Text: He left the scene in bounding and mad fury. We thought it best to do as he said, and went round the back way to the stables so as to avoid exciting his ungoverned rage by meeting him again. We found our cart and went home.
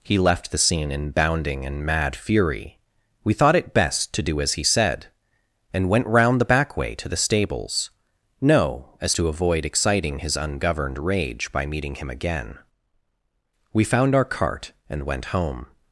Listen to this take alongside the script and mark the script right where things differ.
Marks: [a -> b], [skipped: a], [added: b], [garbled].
He left the scene in bounding and mad fury. We thought it best to do as he said, and went round the back way to the stables [so -> no] as to avoid exciting his ungoverned rage by meeting him again. We found our cart and went home.